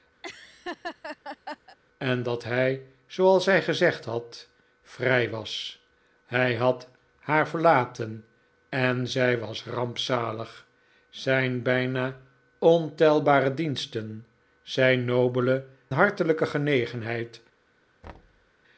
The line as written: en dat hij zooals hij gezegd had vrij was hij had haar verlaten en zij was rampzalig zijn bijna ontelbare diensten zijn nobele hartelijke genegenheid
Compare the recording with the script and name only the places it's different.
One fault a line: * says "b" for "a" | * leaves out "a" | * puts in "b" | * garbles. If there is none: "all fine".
all fine